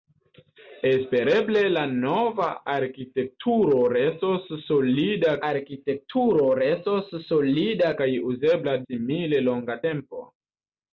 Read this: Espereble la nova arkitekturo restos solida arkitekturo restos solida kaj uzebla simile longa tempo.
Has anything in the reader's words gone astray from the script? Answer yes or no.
no